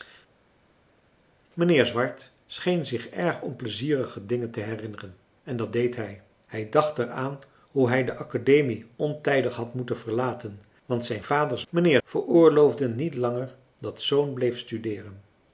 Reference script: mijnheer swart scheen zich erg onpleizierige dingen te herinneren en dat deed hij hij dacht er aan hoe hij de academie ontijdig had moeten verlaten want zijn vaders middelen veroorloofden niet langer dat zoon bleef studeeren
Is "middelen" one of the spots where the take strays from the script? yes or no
yes